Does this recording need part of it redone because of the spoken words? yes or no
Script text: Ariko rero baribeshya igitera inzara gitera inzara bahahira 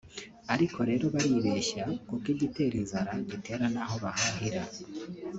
yes